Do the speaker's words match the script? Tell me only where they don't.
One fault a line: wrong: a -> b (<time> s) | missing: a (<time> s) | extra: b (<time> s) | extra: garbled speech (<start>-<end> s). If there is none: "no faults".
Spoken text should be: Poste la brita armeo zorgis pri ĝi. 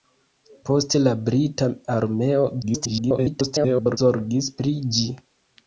extra: garbled speech (2.6-4.0 s)